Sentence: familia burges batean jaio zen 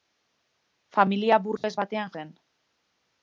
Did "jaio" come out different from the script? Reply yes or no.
yes